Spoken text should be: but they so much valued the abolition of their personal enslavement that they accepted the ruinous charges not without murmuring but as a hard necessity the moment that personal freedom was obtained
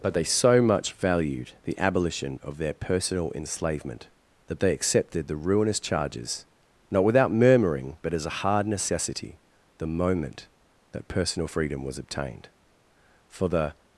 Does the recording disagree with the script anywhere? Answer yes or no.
yes